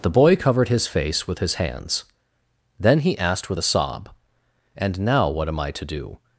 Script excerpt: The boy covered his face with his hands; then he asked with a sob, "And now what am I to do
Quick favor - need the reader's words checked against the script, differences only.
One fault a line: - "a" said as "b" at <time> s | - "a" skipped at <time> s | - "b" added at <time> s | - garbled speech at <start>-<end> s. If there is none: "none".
none